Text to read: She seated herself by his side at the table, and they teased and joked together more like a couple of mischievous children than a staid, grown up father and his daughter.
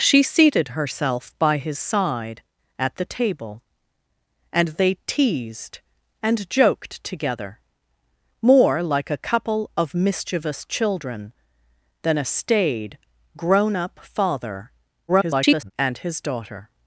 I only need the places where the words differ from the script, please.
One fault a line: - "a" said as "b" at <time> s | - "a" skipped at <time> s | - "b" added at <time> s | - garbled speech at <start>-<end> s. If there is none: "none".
- garbled speech at 15.1-15.7 s